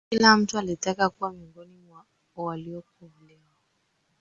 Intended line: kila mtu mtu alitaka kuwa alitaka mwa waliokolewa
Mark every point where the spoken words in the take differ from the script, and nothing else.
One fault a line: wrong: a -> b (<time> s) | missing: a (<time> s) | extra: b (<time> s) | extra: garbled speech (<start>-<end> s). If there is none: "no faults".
missing: mtu (0.6 s)
wrong: alitaka -> miongoni (1.3 s)